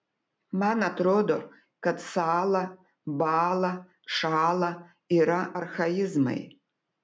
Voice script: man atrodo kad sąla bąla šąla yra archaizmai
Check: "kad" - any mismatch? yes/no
no